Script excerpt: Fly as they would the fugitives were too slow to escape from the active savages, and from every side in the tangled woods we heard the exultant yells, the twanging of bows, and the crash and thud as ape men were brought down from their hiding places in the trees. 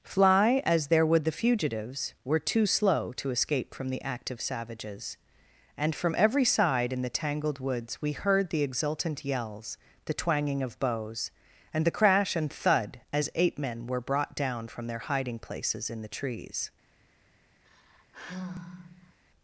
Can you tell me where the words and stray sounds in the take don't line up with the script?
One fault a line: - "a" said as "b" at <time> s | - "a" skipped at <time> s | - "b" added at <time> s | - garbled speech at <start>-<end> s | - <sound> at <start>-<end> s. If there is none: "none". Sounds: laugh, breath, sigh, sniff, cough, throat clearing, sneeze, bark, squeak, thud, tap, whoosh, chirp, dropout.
- "they" said as "there" at 0.9 s
- sigh at 17.6-19.2 s